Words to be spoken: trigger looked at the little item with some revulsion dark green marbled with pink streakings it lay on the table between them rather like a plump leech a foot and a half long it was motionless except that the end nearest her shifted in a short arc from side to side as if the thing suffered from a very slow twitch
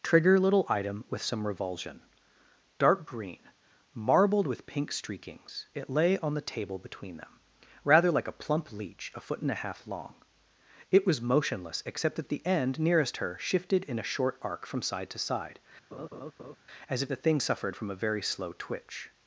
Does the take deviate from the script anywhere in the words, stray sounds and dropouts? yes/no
yes